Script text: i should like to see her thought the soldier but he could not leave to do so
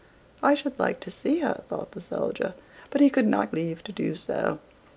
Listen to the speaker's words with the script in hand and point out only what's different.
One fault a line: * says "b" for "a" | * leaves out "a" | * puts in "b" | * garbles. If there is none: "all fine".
all fine